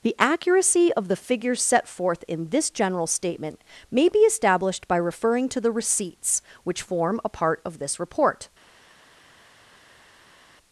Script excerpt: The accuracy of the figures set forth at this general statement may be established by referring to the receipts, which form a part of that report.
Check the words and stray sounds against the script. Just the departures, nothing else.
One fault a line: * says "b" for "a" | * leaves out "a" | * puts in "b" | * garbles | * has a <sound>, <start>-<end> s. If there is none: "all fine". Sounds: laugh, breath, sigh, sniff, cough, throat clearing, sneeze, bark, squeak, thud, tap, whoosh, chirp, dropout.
* says "in" for "at"
* says "this" for "that"